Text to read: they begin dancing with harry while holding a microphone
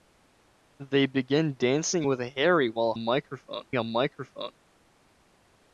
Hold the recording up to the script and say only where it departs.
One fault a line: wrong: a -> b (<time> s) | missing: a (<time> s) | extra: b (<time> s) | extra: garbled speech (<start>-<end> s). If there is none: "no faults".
wrong: holding -> microphone (3.0 s)